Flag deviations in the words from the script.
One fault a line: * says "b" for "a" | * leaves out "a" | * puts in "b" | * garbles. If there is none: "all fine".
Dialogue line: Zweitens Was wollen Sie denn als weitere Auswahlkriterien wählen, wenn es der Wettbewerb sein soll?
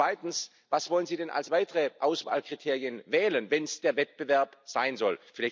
all fine